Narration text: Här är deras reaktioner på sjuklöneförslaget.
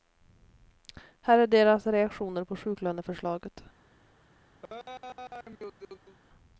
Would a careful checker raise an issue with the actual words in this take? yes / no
no